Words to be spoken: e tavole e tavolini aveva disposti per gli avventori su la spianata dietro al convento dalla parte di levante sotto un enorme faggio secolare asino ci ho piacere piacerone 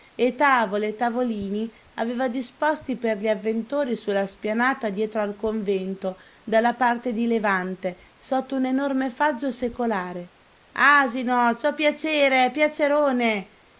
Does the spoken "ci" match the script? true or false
true